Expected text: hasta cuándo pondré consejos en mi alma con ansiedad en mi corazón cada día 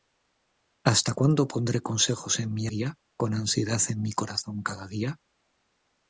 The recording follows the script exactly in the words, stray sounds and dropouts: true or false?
false